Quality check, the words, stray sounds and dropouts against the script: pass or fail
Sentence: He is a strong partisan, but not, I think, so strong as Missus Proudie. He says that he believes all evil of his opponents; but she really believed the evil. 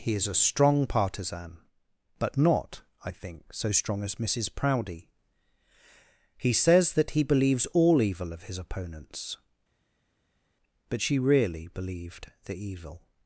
pass